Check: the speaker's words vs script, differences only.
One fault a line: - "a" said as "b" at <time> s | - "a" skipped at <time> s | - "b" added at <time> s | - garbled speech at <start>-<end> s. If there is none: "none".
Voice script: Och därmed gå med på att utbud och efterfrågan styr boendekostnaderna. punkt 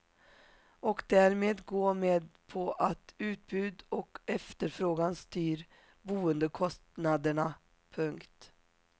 none